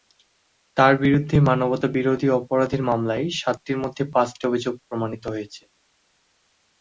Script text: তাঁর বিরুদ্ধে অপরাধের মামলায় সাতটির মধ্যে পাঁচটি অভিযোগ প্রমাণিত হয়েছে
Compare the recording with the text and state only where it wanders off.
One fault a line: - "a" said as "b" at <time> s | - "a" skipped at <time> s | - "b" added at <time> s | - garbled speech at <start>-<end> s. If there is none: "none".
- "মানবতাবিরোধী" added at 1.4 s